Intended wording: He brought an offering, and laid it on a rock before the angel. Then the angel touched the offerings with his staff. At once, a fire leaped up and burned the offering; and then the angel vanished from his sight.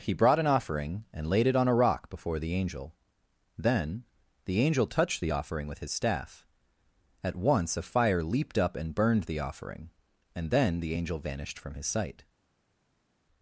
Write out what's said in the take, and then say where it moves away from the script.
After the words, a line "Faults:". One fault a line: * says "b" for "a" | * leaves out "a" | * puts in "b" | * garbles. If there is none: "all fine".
He brought an offering, and laid it on a rock before the angel. Then the angel touched the offering with his staff. At once, a fire leaped up and burned the offering; and then the angel vanished from his sight.
Faults:
* says "offering" for "offerings"